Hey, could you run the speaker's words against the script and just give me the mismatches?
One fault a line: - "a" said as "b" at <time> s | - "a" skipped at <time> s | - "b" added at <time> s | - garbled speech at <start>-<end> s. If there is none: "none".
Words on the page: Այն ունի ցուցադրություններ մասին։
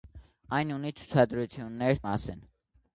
none